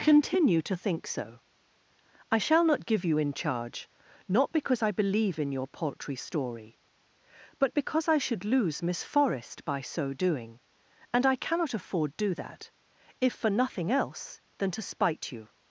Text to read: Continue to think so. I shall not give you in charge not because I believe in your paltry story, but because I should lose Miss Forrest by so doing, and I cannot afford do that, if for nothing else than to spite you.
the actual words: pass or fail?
pass